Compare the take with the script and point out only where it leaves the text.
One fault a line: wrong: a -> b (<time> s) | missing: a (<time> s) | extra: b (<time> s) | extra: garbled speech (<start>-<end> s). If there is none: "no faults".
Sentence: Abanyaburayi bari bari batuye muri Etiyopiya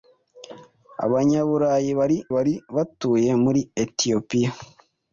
no faults